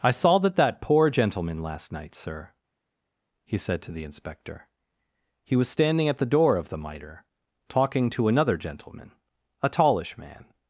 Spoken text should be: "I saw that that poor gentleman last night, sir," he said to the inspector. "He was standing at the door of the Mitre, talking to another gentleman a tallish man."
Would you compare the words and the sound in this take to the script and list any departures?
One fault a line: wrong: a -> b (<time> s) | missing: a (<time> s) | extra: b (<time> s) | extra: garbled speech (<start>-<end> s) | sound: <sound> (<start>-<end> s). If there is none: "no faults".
no faults